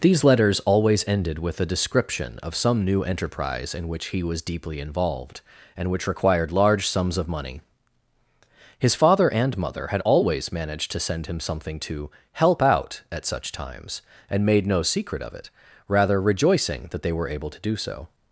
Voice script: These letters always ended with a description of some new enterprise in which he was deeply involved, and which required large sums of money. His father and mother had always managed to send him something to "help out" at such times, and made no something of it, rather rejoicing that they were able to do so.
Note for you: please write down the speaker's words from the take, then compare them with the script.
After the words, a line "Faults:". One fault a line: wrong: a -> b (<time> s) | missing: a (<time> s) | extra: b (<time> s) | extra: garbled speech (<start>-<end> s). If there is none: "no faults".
These letters always ended with a description of some new enterprise in which he was deeply involved, and which required large sums of money. His father and mother had always managed to send him something to "help out" at such times, and made no secret of it, rather rejoicing that they were able to do so.
Faults:
wrong: something -> secret (14.8 s)